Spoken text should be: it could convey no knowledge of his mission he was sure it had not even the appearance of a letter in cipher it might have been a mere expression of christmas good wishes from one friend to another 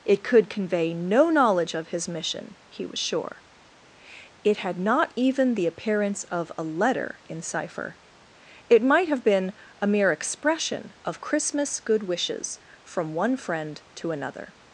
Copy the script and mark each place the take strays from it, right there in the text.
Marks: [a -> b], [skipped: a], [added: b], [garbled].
it could convey no knowledge of his mission he was sure it had not even the appearance of a letter in cipher it might have been a mere expression of christmas good wishes from one friend to another